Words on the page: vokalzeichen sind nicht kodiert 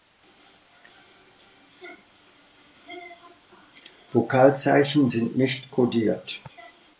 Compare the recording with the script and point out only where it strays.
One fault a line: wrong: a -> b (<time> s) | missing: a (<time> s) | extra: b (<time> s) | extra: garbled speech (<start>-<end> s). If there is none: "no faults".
no faults